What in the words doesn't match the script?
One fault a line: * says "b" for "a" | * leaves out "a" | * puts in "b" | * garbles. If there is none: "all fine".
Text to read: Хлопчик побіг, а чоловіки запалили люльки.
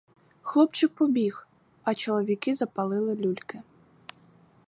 all fine